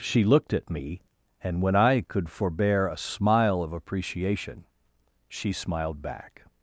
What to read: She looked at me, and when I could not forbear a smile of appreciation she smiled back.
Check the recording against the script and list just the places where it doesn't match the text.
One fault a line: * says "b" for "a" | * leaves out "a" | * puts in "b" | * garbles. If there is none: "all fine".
* leaves out "not"